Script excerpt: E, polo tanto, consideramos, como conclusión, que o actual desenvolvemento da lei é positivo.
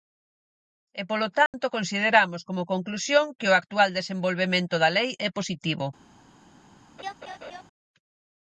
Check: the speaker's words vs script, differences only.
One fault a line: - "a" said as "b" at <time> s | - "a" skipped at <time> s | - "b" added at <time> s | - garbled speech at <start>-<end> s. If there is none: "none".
none